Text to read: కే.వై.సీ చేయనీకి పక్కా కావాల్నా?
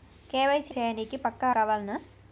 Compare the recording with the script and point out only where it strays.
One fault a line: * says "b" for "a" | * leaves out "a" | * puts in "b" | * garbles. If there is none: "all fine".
all fine